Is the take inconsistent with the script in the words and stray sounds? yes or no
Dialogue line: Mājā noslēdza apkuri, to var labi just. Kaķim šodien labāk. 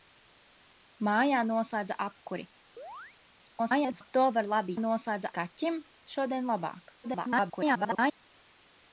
yes